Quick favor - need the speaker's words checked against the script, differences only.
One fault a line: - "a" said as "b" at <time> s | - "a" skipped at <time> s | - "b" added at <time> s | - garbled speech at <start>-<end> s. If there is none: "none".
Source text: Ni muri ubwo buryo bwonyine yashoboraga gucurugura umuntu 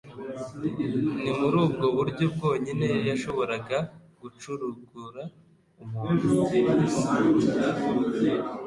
none